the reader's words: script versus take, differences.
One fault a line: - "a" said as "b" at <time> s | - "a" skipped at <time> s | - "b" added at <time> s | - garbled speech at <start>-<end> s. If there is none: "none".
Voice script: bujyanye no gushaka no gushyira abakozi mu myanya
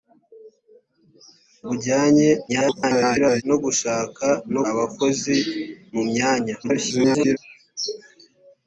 - garbled speech at 2.5-3.4 s
- "gushyira" skipped at 4.6 s
- garbled speech at 6.6-7.4 s